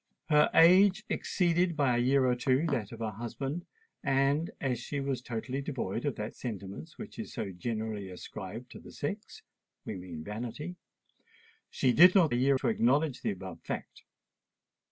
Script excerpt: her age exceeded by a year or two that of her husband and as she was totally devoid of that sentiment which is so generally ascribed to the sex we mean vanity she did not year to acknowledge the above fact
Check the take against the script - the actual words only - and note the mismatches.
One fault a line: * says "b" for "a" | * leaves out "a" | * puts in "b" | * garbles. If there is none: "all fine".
all fine